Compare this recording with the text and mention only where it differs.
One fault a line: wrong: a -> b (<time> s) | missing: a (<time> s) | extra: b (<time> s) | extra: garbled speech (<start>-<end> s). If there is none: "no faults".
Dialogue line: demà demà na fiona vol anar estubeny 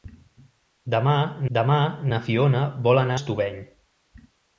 no faults